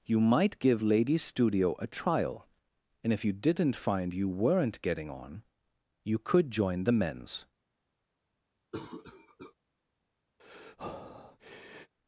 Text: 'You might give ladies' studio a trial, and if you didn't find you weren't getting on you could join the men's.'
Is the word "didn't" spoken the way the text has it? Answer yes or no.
yes